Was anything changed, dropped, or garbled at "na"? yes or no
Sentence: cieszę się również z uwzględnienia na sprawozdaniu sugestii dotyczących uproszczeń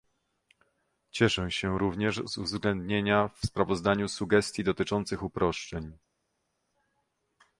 yes